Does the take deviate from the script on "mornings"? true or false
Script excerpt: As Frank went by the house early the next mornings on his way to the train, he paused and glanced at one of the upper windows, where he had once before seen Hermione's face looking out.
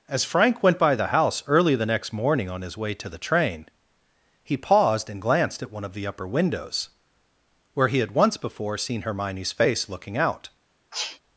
true